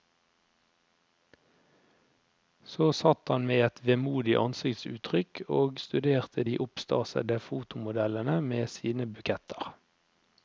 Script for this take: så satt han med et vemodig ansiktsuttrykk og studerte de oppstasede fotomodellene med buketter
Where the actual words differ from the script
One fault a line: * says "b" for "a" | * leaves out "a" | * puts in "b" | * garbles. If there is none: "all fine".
* puts in "sine"